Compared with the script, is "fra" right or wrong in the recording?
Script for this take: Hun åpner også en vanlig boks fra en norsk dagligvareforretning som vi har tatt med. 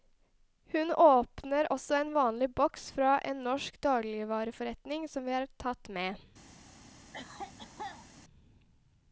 right